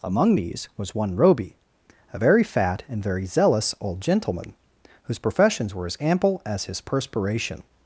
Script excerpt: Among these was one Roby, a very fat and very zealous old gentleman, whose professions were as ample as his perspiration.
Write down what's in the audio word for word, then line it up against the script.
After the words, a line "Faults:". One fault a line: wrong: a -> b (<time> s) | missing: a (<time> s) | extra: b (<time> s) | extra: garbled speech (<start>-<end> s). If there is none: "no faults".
Among these was one Roby, a very fat and very zealous old gentleman, whose professions were as ample as his perspiration.
Faults:
no faults